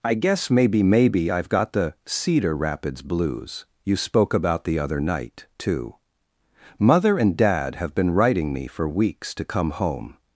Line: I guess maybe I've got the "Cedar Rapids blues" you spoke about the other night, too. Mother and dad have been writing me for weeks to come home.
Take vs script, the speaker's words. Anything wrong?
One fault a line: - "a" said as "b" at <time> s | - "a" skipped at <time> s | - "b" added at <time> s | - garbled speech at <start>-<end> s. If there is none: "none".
- "maybe" added at 0.8 s